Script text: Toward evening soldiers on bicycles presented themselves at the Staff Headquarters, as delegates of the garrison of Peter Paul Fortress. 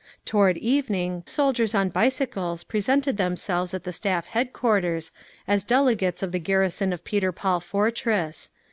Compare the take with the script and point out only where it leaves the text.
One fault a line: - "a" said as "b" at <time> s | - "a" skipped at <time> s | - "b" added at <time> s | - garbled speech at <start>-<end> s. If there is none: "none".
none